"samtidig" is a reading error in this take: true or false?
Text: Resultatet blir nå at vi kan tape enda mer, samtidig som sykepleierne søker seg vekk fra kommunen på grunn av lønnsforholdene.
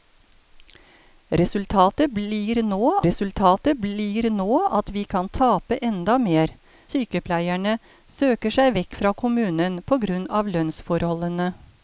true